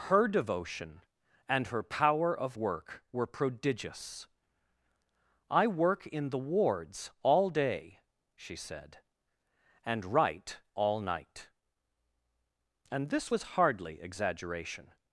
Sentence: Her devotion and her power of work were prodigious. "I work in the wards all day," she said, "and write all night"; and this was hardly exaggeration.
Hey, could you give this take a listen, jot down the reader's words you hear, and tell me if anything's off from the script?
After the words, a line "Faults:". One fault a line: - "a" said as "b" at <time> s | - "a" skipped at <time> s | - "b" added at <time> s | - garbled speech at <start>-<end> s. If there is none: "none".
Her devotion and her power of work were prodigious. "I work in the wards all day," she said, "and write all night"; and this was hardly exaggeration.
Faults:
none